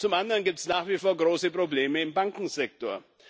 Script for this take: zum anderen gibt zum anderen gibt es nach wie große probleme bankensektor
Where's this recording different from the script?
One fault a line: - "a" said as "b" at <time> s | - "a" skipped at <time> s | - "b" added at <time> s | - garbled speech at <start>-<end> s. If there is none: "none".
- "zum anderen gibt" skipped at 0.6 s
- "vor" added at 0.9 s
- "im" added at 2.0 s